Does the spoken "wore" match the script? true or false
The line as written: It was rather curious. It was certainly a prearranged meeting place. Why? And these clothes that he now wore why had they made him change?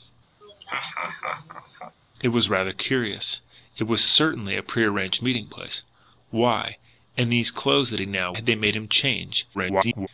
false